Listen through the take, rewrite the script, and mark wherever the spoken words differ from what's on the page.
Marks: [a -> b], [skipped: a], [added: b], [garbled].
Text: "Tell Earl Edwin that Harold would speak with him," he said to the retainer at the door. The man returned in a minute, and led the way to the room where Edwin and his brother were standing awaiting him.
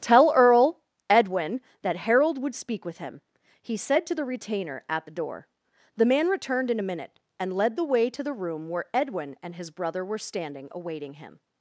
"Tell Earl Edwin that Harold would speak with him," he said to the retainer at the door. The man returned in a minute, and led the way to the room where Edwin and his brother were standing awaiting him.